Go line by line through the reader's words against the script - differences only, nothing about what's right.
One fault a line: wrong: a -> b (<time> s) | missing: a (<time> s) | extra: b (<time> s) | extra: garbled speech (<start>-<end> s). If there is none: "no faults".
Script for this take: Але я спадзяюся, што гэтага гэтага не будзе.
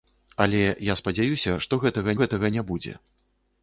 no faults